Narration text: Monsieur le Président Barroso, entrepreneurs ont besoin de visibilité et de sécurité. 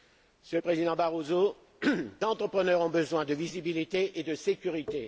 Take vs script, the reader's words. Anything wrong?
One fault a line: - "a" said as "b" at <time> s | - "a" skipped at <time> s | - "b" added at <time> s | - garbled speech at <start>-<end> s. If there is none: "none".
none